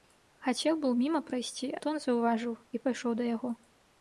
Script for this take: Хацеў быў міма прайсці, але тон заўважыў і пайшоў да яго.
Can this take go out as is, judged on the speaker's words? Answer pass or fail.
fail